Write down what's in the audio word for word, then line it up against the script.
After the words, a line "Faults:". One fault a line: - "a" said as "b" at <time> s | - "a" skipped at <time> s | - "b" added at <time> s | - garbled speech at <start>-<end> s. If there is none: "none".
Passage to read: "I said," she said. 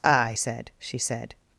"I said," she said.
Faults:
none